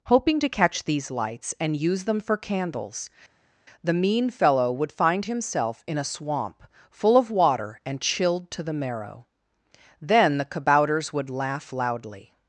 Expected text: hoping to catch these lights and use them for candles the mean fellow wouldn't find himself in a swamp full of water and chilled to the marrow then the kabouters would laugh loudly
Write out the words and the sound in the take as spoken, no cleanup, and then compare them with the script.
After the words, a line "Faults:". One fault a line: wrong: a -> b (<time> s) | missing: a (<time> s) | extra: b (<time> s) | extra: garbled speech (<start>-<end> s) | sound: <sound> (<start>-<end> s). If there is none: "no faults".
hoping to catch these lights and use them for candles the mean fellow would find himself in a swamp full of water and chilled to the marrow then the kabouters would laugh loudly
Faults:
wrong: wouldn't -> would (4.7 s)